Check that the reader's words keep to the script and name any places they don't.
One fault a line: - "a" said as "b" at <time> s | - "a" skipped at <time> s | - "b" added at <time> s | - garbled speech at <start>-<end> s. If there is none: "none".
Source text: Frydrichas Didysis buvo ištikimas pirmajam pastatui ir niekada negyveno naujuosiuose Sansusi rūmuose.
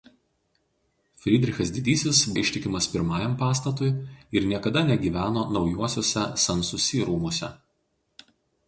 - "buvo" skipped at 2.2 s